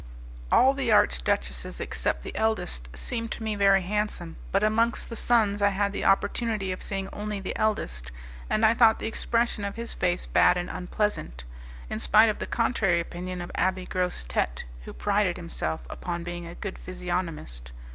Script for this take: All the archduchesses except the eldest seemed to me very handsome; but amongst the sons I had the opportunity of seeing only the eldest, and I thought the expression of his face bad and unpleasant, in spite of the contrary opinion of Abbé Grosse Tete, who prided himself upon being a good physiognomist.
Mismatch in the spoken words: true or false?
false